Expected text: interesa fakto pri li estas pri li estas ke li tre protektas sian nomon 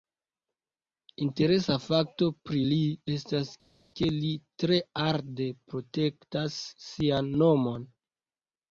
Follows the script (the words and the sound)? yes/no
no